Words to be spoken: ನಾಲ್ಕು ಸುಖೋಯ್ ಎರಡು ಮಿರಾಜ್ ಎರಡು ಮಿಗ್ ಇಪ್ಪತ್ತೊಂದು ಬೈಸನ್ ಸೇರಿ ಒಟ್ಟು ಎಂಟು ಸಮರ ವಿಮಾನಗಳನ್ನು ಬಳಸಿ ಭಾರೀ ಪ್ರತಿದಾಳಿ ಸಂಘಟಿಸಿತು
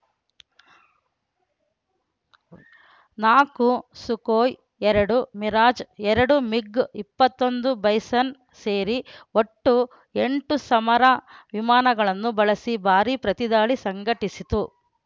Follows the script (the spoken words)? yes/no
yes